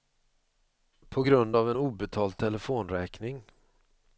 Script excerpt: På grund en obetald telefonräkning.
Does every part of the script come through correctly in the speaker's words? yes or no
no